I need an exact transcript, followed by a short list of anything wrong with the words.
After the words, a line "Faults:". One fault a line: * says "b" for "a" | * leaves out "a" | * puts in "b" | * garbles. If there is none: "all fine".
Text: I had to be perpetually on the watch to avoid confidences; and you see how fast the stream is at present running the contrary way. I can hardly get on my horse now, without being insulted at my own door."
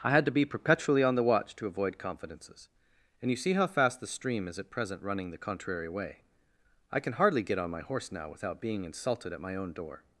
I had to be perpetually on the watch to avoid confidences; and you see how fast the stream is at present running the contrary way. I can hardly get on my horse now, without being insulted at my own door."
Faults:
all fine